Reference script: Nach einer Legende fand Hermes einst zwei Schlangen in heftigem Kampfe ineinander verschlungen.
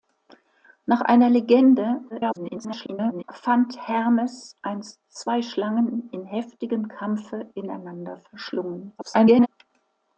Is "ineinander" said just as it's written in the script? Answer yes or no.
yes